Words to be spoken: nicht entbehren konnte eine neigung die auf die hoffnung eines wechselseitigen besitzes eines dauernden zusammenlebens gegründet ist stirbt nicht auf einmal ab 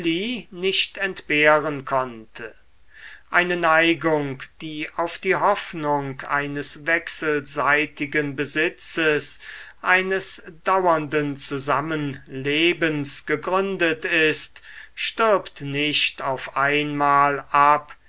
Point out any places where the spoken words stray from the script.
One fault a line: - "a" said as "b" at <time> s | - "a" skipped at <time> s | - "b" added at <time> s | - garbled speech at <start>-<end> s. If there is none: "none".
none